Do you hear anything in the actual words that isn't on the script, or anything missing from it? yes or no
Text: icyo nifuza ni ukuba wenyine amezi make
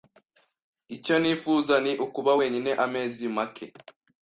no